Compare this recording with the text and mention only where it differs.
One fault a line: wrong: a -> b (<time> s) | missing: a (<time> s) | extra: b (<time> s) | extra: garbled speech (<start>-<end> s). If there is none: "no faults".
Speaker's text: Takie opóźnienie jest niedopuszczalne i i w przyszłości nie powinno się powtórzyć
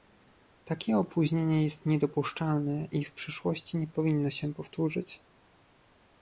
missing: i (3.0 s)